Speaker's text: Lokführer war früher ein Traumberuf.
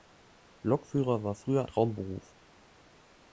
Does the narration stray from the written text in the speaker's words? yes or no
yes